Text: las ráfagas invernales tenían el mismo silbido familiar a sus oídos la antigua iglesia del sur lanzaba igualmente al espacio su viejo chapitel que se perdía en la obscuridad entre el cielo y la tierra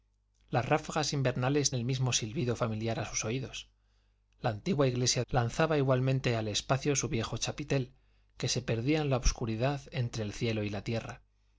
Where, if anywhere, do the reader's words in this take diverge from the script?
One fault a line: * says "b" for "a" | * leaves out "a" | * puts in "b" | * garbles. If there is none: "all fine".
* leaves out "tenían"
* leaves out "del sur"